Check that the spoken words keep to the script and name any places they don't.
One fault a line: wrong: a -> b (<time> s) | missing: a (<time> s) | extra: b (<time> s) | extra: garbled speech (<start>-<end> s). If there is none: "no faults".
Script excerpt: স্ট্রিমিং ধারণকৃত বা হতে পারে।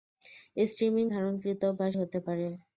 no faults